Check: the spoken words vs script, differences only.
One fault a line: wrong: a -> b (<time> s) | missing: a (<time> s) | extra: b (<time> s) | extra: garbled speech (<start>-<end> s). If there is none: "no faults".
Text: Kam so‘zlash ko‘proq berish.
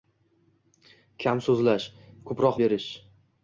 no faults